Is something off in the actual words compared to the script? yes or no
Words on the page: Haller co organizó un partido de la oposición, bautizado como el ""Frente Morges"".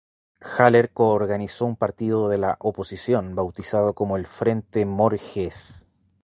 no